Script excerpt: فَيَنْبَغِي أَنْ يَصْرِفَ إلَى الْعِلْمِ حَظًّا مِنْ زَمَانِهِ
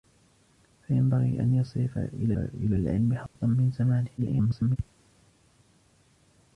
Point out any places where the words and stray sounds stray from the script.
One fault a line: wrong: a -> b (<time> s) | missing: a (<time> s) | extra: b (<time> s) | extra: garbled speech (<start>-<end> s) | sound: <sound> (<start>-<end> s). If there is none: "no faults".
extra: إلَى (2.4 s)
sound: dropout (3.3-3.4 s)
extra: garbled speech (4.2-4.8 s)